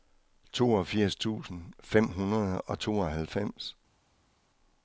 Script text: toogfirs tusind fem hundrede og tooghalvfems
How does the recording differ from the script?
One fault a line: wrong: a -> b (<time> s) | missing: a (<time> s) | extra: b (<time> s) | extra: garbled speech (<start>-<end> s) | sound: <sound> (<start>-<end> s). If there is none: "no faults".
no faults